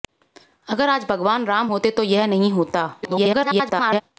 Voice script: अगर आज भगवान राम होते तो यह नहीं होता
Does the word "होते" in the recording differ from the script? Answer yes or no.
no